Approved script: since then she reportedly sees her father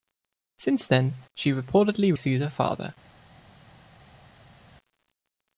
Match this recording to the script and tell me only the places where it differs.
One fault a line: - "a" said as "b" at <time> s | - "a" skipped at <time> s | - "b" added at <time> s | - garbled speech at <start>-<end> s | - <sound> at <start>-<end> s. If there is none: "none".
none